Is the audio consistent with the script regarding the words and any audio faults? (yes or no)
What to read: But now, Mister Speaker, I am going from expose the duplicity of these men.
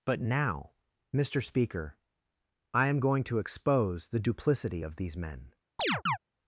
no